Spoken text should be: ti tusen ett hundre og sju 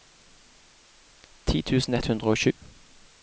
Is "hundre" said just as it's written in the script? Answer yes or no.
yes